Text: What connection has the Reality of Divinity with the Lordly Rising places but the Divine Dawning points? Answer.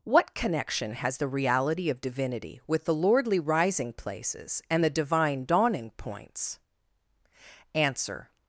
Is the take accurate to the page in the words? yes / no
no